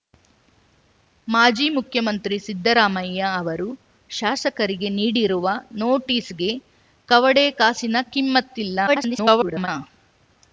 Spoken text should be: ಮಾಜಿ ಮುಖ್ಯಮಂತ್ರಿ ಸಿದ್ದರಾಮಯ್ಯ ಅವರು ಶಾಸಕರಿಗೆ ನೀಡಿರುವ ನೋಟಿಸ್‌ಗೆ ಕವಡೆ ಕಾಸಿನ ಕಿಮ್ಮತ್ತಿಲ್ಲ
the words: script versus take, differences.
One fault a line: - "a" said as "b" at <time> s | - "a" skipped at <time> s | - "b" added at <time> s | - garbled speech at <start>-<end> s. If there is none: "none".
- garbled speech at 8.9-9.7 s